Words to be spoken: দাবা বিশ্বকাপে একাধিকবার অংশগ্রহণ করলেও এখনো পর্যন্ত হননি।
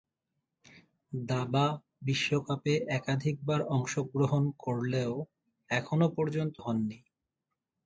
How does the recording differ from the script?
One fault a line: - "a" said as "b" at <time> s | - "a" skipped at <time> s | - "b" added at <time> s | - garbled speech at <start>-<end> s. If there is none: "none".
none